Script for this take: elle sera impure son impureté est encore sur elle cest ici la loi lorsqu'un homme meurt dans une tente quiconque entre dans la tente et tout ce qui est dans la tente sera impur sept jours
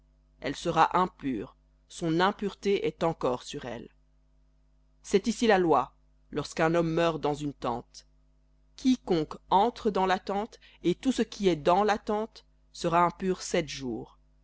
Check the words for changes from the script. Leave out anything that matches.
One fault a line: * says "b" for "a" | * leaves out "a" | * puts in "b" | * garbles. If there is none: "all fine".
all fine